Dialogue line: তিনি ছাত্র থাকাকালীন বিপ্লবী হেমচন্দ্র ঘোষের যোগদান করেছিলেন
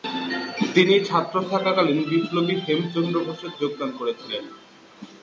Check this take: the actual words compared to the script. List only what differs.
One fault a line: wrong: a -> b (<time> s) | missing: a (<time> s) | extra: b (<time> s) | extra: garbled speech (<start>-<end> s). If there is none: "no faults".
no faults